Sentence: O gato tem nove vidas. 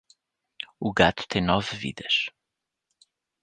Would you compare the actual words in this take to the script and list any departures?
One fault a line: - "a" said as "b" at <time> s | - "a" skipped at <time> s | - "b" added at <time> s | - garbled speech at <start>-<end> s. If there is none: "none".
none